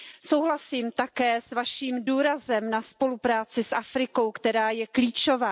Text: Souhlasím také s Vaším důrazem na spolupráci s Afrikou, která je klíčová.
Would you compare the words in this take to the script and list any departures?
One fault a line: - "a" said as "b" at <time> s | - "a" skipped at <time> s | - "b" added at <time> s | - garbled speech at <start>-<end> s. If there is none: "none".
none